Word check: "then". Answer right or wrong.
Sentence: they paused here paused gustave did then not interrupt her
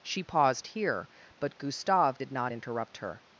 wrong